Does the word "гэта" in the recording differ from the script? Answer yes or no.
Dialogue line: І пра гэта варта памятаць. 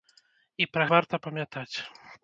yes